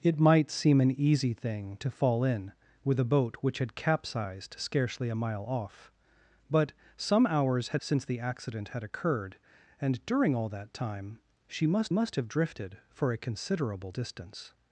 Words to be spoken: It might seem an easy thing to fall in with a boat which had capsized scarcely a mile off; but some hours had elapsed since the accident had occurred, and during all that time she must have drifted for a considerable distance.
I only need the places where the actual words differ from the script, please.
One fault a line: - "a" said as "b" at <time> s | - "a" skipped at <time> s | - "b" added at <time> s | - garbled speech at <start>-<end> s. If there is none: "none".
- "elapsed" skipped at 7.8 s
- "must" added at 11.9 s